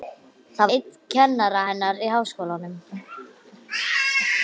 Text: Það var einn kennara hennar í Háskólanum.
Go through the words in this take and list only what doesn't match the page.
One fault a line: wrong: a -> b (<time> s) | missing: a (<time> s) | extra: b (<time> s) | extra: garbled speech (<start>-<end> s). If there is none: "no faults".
missing: var (0.7 s)